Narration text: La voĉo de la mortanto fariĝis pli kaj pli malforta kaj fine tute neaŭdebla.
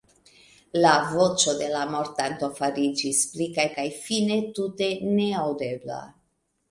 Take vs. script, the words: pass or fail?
fail